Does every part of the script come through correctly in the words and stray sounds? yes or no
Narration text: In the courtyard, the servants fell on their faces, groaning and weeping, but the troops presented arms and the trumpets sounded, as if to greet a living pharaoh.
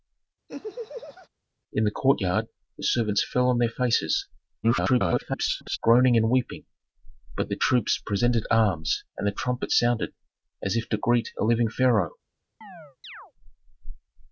no